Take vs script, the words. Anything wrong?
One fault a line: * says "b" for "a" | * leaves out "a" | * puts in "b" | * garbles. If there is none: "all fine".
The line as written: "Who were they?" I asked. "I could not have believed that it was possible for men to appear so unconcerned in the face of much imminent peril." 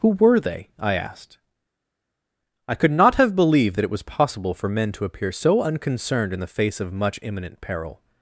all fine